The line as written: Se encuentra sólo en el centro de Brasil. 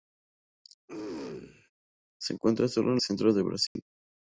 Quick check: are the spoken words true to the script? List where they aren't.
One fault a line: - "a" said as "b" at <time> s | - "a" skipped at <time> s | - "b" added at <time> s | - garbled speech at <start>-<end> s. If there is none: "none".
- "el" skipped at 3.0 s